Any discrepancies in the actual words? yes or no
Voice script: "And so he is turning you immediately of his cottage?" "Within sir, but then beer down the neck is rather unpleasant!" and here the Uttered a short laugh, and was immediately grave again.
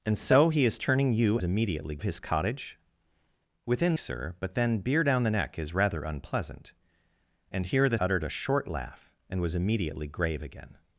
no